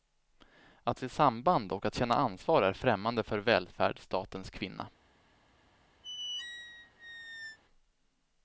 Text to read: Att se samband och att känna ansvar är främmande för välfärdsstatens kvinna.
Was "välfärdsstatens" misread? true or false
false